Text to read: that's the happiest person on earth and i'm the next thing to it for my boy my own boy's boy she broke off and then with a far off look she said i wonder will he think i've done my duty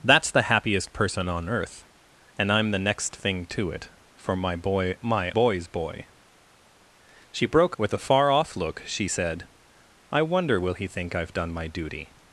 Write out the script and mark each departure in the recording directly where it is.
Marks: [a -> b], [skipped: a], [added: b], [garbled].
that's the happiest person on earth and i'm the next thing to it for my boy my [skipped: own] boy's boy she broke [skipped: off and then] with a far off look she said i wonder will he think i've done my duty